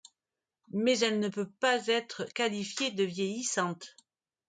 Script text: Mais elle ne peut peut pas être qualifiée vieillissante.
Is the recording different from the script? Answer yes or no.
yes